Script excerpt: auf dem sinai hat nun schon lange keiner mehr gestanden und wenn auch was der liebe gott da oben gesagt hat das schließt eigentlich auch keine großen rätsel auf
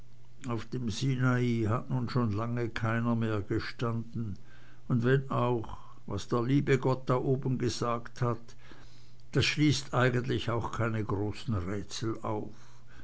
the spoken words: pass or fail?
pass